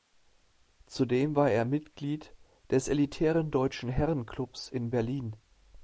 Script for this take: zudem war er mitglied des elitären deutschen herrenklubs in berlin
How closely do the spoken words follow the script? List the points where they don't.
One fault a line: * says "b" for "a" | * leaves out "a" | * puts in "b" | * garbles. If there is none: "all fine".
all fine